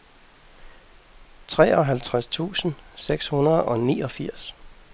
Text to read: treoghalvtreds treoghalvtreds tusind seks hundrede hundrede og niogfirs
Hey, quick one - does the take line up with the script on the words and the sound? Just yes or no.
no